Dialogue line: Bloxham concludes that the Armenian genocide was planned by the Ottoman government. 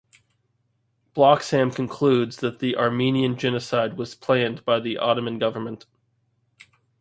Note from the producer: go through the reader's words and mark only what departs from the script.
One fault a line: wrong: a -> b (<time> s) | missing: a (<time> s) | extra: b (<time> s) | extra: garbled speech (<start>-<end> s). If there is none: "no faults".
no faults